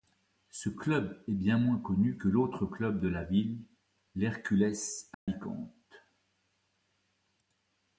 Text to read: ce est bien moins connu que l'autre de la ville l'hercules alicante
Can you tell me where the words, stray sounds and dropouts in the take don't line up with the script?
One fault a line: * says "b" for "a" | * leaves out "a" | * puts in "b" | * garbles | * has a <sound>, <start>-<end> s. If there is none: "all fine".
* puts in "club"
* puts in "club"
* has a dropout, 5.1-5.3 s